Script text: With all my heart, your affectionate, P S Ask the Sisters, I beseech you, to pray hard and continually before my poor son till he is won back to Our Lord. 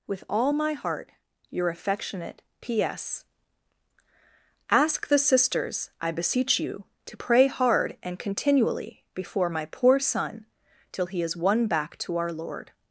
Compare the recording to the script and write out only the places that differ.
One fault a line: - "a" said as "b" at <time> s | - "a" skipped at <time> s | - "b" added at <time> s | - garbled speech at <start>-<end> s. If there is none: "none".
none